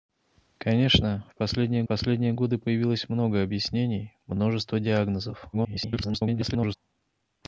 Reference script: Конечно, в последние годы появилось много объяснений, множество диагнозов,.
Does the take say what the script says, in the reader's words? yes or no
no